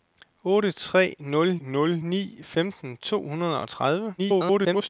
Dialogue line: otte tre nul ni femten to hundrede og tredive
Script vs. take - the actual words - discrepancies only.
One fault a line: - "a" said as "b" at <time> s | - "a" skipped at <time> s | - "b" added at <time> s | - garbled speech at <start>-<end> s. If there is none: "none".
- "nul" added at 1.6 s
- garbled speech at 4.2-4.9 s